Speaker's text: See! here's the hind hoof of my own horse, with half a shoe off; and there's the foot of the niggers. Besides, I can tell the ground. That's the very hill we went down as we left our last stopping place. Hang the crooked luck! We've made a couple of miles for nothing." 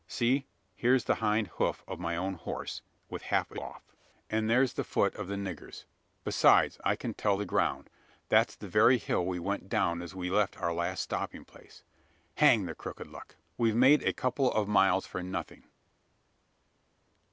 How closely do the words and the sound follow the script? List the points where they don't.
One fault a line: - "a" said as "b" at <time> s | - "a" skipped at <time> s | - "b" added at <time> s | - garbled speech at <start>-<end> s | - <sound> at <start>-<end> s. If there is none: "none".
- "shoe" skipped at 3.6 s